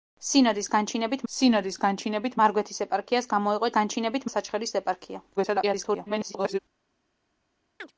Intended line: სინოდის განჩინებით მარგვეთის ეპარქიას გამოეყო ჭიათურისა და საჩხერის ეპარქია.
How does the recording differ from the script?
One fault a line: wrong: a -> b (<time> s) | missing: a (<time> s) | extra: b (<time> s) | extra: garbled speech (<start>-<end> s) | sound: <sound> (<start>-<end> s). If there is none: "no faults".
extra: სინოდის განჩინებით (1.3 s)
wrong: ჭიათურისა -> განჩინებით (3.8 s)
extra: garbled speech (5.4-6.6 s)
sound: chirp (7.8-7.9 s)